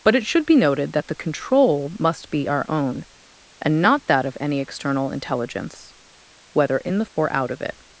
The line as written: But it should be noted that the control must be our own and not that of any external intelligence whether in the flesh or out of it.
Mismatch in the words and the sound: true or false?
true